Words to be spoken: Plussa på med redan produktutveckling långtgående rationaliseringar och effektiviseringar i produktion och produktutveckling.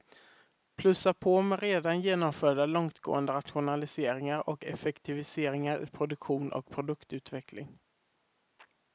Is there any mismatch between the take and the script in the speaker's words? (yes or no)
yes